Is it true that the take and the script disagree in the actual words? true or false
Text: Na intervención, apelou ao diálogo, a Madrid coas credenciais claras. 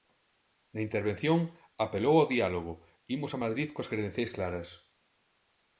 true